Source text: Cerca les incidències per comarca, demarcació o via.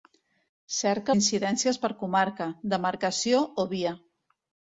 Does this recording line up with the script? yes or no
no